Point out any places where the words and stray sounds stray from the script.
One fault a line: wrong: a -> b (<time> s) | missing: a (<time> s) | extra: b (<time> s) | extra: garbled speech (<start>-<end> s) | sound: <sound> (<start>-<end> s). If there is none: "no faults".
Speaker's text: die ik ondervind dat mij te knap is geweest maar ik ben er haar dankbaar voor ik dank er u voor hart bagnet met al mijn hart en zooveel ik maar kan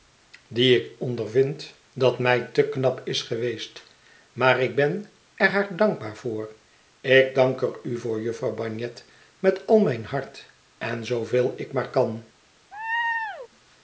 wrong: hart -> jufvrouw (8.2 s)
sound: laugh (12.7-13.5 s)